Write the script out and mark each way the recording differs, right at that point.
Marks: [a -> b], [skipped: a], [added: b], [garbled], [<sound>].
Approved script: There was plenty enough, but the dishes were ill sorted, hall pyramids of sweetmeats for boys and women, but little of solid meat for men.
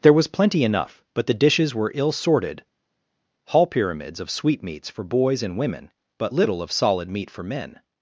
There was plenty enough, but the dishes were ill sorted, hall pyramids of sweetmeats for boys and women, but little of solid meat for men.